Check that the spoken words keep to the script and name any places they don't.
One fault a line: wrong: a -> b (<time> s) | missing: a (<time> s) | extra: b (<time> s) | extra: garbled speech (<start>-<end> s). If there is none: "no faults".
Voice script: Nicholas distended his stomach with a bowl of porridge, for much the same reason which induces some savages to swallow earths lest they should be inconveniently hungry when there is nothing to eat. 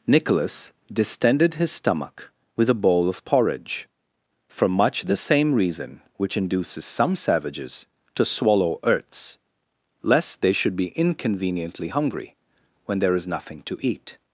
no faults